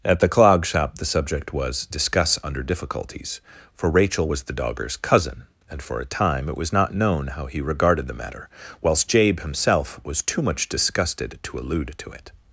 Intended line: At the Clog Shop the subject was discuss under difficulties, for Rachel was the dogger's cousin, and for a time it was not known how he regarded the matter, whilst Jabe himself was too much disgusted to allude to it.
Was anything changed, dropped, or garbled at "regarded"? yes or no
no